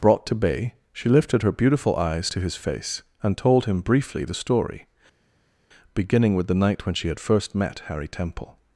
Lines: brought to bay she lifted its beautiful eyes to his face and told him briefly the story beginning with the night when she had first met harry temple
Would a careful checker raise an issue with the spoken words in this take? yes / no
yes